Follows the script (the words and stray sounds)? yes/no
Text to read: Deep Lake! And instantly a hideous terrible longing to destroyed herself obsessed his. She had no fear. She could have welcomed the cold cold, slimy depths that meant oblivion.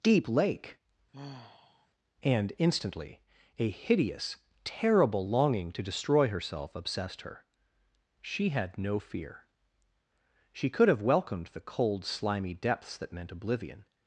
no